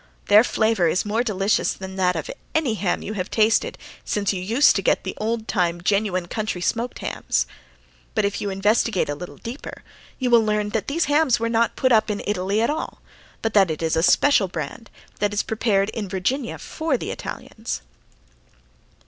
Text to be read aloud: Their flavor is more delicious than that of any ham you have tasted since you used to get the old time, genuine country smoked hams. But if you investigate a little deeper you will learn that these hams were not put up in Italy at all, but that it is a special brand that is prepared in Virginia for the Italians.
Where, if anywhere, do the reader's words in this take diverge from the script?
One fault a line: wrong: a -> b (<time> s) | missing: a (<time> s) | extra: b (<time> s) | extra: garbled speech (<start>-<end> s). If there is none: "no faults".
no faults